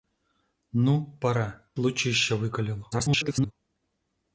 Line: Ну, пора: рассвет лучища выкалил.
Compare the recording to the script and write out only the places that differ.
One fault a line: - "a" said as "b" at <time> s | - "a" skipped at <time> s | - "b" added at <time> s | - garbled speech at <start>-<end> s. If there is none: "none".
- "рассвет" skipped at 1.6 s
- garbled speech at 2.9-3.5 s